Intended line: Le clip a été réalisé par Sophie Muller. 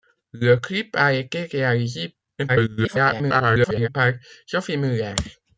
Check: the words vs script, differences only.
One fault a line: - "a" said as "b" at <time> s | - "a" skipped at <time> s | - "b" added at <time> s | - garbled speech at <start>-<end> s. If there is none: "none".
- garbled speech at 2.5-3.9 s